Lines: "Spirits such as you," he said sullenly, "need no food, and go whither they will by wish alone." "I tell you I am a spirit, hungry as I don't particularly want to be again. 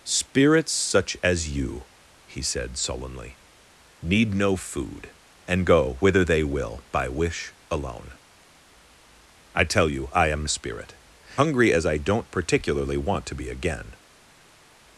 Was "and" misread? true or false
false